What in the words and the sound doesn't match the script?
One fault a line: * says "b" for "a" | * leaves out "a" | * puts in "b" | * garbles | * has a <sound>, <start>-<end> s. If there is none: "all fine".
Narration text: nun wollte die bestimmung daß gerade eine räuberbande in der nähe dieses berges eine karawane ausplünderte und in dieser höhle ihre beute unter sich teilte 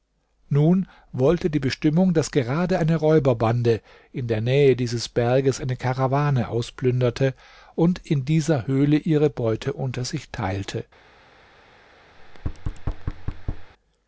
* has a thud, 12.2-13.7 s